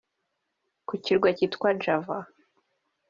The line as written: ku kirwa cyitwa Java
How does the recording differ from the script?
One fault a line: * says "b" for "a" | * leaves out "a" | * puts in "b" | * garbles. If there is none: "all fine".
all fine